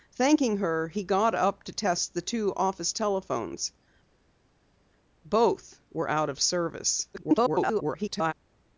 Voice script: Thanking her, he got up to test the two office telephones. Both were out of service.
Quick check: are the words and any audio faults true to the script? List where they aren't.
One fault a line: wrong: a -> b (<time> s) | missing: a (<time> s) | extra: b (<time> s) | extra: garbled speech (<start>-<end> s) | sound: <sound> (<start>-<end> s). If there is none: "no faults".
extra: garbled speech (7.1-8.3 s)